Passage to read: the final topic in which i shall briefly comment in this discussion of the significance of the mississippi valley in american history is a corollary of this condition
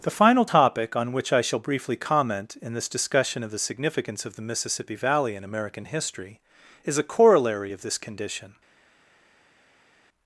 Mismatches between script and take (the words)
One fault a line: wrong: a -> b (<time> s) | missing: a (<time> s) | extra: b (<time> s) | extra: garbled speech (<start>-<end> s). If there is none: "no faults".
wrong: in -> on (0.9 s)